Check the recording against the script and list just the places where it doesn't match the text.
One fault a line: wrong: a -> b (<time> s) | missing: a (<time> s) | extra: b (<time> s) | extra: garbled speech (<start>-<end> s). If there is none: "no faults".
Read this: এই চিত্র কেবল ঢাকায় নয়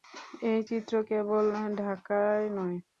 no faults